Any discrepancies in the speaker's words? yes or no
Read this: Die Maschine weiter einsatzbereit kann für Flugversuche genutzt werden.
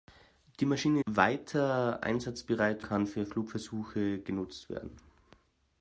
no